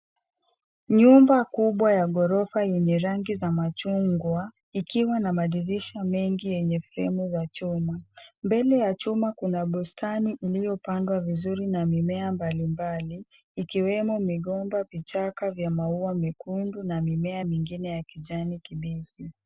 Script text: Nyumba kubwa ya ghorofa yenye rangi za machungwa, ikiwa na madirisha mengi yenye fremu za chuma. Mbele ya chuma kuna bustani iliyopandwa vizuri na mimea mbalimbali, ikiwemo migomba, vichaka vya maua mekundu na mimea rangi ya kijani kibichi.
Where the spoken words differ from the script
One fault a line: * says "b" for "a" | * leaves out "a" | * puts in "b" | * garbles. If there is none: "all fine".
* says "mingine" for "rangi"